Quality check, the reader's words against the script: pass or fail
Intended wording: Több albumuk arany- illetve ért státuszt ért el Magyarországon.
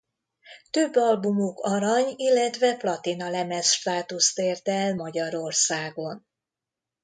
fail